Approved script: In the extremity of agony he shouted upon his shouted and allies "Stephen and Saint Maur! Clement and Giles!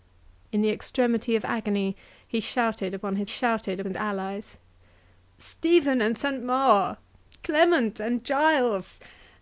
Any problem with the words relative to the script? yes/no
no